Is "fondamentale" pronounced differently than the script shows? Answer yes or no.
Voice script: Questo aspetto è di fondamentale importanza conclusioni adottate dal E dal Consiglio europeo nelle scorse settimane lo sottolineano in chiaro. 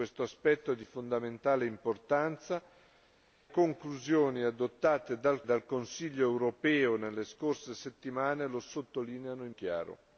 no